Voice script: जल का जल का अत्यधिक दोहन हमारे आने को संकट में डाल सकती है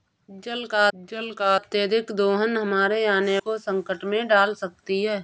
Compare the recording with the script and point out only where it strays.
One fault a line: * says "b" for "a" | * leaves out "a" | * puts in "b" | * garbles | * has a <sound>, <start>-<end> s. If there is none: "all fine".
all fine